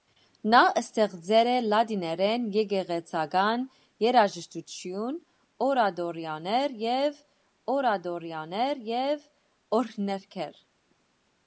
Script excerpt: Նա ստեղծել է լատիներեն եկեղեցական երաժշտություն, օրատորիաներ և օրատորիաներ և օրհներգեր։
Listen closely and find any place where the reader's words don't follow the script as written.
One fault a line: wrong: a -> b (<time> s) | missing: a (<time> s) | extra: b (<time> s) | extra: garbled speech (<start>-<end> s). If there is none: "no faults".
no faults